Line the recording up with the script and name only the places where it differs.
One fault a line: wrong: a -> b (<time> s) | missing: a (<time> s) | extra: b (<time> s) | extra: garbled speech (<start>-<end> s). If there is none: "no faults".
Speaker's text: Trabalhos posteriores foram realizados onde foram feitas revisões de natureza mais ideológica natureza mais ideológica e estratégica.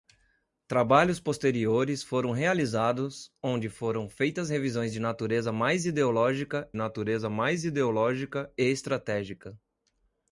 no faults